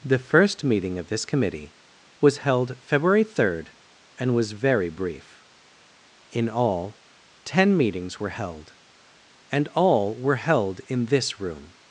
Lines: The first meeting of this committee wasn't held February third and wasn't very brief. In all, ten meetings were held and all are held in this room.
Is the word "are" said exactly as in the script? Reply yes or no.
no